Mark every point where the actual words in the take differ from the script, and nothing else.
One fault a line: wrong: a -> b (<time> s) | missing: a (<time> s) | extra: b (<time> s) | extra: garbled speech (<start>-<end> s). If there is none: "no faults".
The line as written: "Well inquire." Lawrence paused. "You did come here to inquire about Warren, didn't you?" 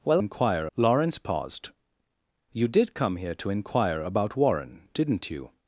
no faults